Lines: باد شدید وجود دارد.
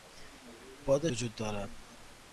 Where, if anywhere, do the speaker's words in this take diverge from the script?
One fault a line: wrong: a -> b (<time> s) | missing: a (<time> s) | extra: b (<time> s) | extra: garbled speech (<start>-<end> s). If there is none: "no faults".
missing: شدید (1.1 s)